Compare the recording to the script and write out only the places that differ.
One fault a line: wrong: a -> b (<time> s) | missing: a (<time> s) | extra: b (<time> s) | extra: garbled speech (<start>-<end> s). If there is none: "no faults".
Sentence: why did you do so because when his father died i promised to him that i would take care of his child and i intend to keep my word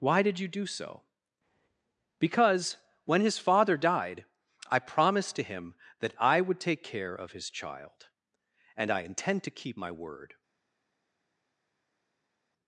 no faults